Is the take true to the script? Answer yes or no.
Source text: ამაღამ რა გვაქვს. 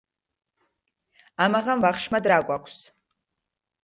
no